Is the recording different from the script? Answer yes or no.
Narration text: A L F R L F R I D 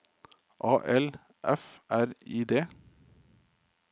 yes